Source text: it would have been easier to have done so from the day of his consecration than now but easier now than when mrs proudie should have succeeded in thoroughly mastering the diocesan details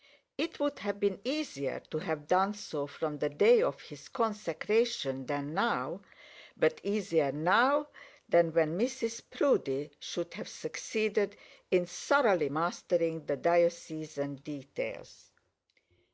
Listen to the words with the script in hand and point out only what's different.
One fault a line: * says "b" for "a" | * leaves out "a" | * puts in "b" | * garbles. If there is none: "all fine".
all fine